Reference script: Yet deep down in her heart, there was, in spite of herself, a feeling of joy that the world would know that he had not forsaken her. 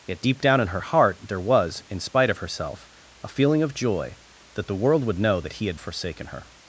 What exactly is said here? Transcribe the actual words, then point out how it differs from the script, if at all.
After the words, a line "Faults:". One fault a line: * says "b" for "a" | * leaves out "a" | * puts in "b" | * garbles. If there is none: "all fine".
Yet deep down in her heart, there was, in spite of herself, a feeling of joy that the world would know that he had forsaken her.
Faults:
* leaves out "not"